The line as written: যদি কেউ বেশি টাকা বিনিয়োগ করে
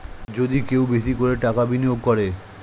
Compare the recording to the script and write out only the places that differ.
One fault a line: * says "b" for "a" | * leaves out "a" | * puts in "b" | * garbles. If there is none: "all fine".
* puts in "করে"